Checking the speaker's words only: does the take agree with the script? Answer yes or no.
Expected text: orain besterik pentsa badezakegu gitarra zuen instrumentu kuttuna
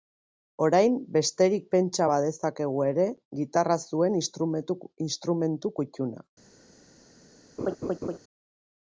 no